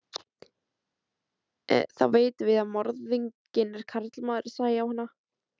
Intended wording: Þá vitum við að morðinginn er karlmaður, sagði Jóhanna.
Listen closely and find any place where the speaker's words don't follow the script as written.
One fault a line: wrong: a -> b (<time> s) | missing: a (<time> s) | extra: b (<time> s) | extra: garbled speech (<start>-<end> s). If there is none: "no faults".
no faults